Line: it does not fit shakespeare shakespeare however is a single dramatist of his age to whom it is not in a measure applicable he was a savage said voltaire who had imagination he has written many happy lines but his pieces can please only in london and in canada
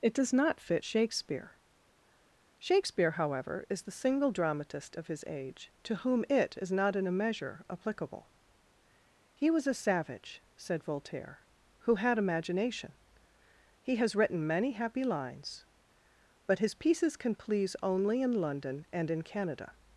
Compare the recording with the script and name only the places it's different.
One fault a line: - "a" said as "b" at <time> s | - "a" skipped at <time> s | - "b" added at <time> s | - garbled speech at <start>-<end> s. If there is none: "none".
- "a" said as "the" at 3.8 s